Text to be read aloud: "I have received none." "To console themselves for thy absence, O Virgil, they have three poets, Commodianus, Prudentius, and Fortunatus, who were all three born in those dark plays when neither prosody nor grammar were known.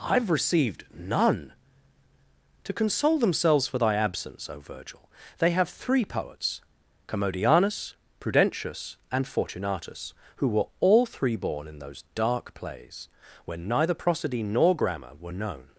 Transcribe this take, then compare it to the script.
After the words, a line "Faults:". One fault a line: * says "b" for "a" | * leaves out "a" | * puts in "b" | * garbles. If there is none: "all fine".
"I have received none." "To console themselves for thy absence, O Virgil, they have three poets, Commodianus, Prudentius, and Fortunatus, who were all three born in those dark plays when neither prosody nor grammar were known.
Faults:
all fine